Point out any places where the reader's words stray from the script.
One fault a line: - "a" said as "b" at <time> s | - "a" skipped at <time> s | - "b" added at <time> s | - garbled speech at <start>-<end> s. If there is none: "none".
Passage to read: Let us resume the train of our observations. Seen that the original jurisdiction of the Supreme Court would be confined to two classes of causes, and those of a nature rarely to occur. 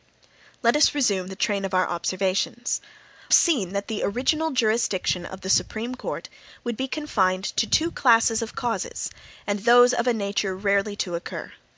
none